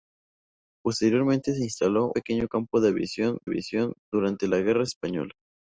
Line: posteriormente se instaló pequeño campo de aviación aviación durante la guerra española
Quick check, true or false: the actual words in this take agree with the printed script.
true